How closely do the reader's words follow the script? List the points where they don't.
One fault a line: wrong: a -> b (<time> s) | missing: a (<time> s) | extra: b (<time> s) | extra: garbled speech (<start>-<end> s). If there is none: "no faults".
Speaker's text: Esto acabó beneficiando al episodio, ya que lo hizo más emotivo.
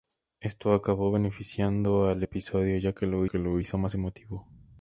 extra: que lo (3.2 s)